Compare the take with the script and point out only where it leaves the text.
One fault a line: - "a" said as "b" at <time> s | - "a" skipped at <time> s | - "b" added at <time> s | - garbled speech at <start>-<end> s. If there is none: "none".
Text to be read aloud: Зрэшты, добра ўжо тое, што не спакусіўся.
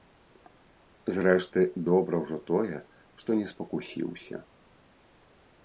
none